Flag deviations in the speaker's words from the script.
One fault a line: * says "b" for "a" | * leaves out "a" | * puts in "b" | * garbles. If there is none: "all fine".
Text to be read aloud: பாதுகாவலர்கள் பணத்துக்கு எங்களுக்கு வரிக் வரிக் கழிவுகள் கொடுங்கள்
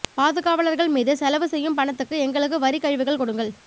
* puts in "மீது செலவு செய்யும்"
* leaves out "வரிக்"